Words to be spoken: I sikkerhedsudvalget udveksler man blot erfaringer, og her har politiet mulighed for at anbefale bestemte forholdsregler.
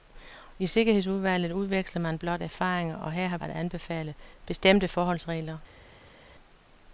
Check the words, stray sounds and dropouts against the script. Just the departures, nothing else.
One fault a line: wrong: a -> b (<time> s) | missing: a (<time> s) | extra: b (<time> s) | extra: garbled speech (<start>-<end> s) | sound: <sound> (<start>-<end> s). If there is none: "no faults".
missing: politiet mulighed for (3.4 s)